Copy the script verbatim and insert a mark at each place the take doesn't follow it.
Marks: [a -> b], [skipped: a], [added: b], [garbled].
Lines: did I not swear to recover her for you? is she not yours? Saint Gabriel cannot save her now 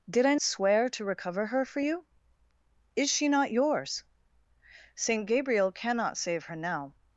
did I [skipped: not] swear to recover her for you? is she not yours? Saint Gabriel cannot save her now